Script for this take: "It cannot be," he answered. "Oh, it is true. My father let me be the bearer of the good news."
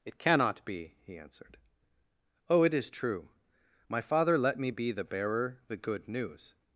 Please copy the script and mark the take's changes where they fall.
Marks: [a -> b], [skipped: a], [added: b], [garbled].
"It cannot be," he answered. "Oh, it is true. My father let me be the bearer [skipped: of] the good news."